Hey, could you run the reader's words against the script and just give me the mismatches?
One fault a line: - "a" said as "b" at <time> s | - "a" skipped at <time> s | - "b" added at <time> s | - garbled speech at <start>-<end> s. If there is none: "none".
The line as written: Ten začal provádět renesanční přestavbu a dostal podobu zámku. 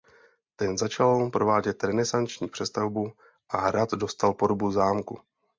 - "hrad" added at 3.6 s